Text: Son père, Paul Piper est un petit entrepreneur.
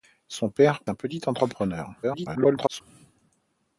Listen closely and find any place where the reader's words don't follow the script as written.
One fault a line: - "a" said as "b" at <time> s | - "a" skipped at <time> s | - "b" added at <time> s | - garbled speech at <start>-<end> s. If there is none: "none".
- "Paul Piper est" skipped at 0.8 s
- garbled speech at 2.0-2.8 s